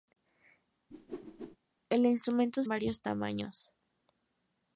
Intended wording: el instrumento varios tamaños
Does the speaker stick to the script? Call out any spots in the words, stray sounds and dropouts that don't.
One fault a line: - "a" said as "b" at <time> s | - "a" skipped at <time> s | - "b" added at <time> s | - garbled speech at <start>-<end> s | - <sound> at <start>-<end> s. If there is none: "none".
- whoosh at 0.9-1.6 s